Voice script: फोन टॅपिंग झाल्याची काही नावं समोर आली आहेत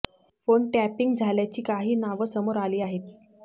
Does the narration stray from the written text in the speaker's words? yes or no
no